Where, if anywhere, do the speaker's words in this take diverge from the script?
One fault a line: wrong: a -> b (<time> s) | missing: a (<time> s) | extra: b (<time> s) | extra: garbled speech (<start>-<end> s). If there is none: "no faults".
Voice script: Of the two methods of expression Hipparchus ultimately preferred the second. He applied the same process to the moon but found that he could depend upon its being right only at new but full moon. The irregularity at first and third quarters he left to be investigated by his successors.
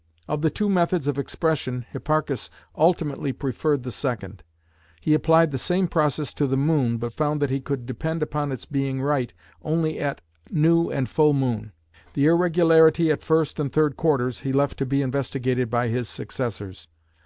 wrong: but -> and (10.9 s)